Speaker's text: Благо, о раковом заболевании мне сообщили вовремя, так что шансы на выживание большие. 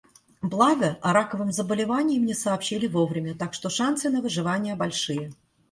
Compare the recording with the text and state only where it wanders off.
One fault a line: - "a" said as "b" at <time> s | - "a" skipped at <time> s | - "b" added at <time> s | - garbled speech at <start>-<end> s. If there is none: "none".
none